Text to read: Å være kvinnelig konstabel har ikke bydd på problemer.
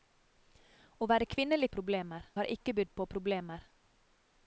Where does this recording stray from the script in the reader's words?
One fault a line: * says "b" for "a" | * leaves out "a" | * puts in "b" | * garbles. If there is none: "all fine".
* says "problemer" for "konstabel"